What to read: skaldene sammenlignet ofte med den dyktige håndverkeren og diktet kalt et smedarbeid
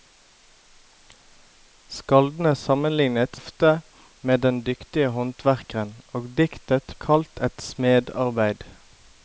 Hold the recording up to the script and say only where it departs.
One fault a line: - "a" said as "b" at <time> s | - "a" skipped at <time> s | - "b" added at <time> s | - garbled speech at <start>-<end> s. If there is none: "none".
none